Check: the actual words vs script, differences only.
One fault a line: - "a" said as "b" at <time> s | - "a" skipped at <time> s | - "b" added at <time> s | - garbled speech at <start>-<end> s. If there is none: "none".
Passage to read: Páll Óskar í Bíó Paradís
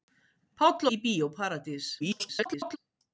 - "Óskar" skipped at 0.9 s
- garbled speech at 2.0-2.8 s